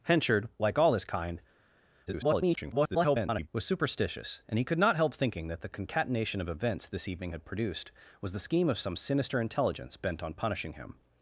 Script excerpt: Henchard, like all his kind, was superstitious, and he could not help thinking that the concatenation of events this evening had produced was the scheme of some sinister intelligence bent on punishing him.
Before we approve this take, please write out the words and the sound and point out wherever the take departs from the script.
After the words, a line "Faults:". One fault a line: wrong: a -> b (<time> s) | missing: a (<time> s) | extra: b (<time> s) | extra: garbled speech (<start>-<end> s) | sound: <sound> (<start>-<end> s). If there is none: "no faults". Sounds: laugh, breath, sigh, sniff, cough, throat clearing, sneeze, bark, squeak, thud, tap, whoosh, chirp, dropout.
Henchard, like all his kind, [garbled] was superstitious, and he could not help thinking that the concatenation of events this evening had produced was the scheme of some sinister intelligence bent on punishing him.
Faults:
extra: garbled speech (2.1-3.5 s)